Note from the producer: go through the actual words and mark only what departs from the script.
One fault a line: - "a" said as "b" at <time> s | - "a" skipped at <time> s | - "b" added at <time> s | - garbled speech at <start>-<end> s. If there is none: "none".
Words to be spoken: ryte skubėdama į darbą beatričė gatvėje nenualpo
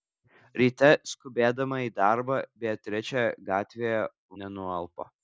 none